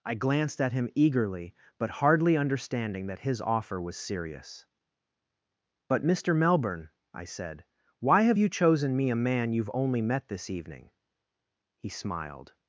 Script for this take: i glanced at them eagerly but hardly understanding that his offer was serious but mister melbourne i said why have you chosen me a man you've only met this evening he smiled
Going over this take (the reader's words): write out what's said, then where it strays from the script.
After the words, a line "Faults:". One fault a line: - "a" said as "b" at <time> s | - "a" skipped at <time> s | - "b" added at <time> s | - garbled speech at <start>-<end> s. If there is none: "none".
i glanced at him eagerly but hardly understanding that his offer was serious but mister melbourne i said why have you chosen me a man you've only met this evening he smiled
Faults:
- "them" said as "him" at 0.7 s